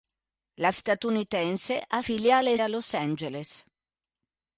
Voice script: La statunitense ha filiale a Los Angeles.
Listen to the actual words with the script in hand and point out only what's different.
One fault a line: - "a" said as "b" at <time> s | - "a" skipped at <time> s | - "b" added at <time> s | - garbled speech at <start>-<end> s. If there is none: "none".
none